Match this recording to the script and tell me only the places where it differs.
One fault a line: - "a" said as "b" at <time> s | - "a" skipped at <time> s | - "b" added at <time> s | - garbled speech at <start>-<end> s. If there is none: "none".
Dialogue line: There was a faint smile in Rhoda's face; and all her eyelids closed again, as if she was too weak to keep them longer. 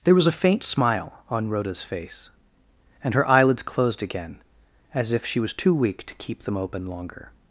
- "in" said as "on" at 1.3 s
- "all" skipped at 3.1 s
- "open" added at 6.6 s